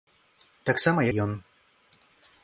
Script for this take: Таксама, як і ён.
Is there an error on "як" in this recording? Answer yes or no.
yes